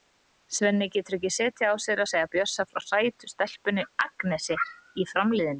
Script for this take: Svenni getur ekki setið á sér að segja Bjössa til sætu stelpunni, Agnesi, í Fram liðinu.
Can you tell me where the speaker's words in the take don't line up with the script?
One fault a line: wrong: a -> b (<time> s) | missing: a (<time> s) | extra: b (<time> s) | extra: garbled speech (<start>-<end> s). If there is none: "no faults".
wrong: til -> frá (2.7 s)